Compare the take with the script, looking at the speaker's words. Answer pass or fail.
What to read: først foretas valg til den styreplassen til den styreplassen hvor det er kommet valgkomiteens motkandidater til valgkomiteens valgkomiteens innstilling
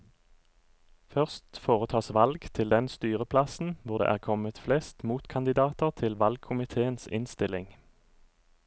fail